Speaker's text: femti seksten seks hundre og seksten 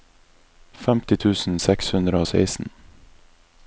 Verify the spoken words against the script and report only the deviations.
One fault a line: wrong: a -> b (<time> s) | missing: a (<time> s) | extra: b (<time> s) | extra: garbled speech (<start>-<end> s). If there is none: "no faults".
wrong: seksten -> tusen (1.2 s)